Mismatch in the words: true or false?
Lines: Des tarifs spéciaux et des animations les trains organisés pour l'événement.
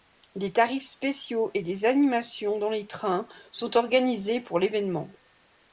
true